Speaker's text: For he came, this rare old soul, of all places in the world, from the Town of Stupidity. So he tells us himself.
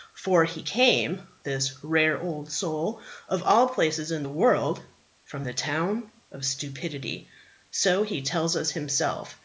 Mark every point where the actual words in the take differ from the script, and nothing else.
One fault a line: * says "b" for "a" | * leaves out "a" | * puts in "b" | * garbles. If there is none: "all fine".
all fine